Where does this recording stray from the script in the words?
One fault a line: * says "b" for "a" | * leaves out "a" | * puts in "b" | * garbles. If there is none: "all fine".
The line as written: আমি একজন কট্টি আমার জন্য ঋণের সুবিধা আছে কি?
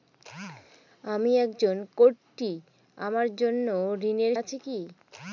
* leaves out "সুবিধা"